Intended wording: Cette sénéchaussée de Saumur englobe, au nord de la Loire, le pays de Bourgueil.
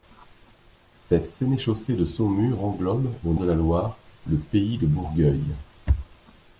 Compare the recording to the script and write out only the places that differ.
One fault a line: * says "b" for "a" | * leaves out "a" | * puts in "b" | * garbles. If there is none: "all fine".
* leaves out "nord"